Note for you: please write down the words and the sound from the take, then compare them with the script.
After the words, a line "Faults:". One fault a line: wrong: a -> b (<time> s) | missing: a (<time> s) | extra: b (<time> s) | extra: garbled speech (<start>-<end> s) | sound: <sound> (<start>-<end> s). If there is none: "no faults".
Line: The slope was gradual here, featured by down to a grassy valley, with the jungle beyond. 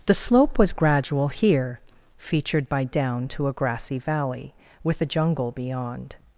The slope was gradual here, featured by down to a grassy valley, with the jungle beyond.
Faults:
no faults